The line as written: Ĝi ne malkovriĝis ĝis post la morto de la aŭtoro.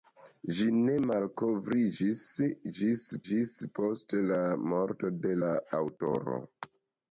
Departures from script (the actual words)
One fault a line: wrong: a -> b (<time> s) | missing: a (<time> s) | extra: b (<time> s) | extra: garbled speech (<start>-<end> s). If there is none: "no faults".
extra: ĝis (3.3 s)